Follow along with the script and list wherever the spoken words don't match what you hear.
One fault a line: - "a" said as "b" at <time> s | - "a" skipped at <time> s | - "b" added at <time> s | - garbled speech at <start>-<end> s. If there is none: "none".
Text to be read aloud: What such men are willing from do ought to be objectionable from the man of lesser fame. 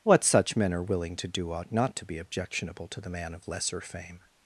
- "from" said as "to" at 1.2 s
- "not" added at 1.7 s
- "from" said as "to" at 2.9 s